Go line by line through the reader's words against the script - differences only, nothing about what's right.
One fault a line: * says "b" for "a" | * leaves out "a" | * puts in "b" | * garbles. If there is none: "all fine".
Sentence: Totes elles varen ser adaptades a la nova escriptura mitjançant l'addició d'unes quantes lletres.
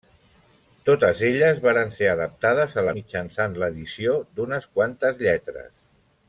* leaves out "nova escriptura"